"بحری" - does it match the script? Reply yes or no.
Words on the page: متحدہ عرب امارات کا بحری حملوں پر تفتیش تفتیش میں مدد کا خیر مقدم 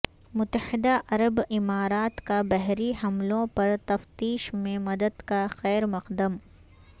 yes